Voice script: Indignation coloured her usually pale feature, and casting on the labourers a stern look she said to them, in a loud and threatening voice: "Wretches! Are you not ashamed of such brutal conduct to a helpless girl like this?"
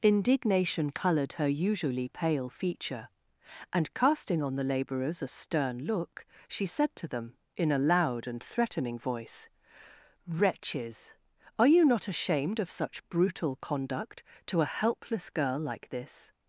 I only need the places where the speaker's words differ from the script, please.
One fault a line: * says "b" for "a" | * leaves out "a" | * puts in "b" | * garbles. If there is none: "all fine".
all fine